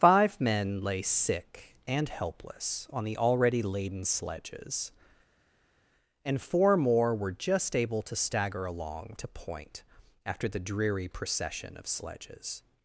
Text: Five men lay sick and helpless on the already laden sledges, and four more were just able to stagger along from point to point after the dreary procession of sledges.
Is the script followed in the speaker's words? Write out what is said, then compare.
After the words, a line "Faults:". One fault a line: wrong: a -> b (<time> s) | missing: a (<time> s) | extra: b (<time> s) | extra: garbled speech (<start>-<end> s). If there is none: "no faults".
Five men lay sick and helpless on the already laden sledges, and four more were just able to stagger along to point after the dreary procession of sledges.
Faults:
missing: from point (9.1 s)